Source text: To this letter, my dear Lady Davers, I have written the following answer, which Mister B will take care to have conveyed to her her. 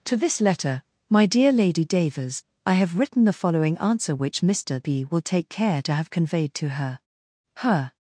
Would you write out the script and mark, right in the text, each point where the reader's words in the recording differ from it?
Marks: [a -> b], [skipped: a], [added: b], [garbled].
To this letter, my dear Lady Davers, I have written the following answer, which Mister B will take care to have conveyed to her her.